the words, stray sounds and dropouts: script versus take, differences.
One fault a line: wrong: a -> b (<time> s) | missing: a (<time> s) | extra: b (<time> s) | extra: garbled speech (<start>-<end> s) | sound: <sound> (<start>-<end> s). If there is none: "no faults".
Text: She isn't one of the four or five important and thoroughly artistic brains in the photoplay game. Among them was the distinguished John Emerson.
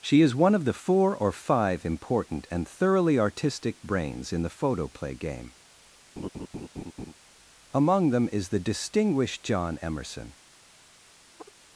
wrong: isn't -> is (0.2 s)
sound: laugh (6.2-7.1 s)
wrong: was -> is (8.3 s)
sound: sigh (11.3-11.5 s)